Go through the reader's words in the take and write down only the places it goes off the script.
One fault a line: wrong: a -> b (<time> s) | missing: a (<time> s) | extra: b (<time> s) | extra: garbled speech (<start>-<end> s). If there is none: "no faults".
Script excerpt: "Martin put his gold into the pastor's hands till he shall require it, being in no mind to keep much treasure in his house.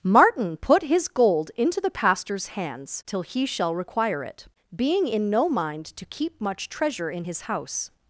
no faults